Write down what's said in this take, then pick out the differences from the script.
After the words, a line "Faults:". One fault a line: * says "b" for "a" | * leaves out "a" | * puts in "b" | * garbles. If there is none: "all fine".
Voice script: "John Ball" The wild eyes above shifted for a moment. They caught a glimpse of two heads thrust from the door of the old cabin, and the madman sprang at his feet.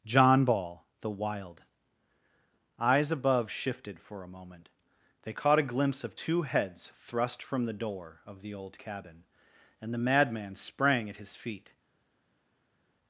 "John Ball" The wild eyes above shifted for a moment. They caught a glimpse of two heads thrust from the door of the old cabin, and the madman sprang at his feet.
Faults:
all fine